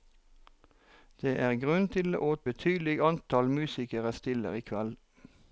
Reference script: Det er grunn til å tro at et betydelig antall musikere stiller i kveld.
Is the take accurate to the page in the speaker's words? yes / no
no